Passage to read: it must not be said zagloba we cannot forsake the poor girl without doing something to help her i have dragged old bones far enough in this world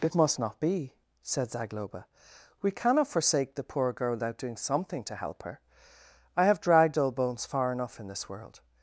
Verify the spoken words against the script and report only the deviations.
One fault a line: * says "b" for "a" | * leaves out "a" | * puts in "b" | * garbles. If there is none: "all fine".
all fine